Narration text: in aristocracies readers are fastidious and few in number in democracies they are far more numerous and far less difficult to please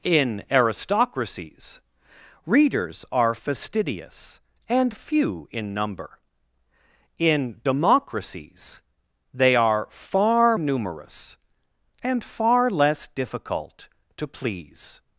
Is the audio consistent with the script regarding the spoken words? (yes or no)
no